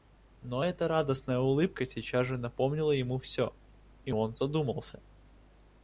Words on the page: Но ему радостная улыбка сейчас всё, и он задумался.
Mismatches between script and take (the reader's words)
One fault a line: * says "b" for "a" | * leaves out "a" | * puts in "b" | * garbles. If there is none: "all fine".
* says "эта" for "ему"
* puts in "же напомнила ему"